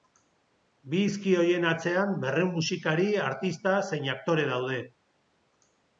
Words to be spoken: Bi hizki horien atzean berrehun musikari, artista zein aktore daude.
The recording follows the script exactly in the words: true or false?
true